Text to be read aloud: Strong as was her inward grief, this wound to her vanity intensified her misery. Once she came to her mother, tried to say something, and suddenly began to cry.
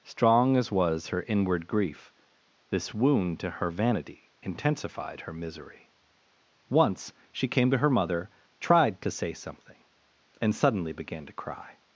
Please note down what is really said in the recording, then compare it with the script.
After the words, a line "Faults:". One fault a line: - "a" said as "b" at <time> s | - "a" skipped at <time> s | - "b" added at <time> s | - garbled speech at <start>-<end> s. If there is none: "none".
Strong as was her inward grief, this wound to her vanity intensified her misery. Once she came to her mother, tried to say something, and suddenly began to cry.
Faults:
none